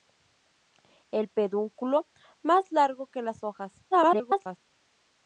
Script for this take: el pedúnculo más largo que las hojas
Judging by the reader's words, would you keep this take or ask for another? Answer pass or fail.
fail